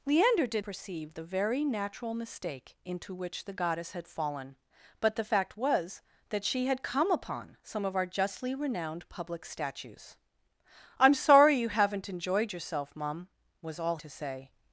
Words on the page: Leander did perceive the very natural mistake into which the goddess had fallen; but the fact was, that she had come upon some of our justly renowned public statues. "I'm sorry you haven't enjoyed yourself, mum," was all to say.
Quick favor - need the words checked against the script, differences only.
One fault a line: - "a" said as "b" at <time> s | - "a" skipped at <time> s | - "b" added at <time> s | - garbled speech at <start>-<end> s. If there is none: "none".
none